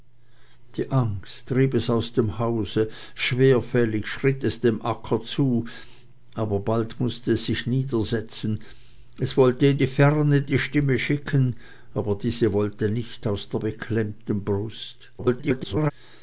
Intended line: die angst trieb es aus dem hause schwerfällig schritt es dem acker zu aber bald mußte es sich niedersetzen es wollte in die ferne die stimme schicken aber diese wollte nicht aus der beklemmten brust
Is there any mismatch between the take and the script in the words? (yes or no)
yes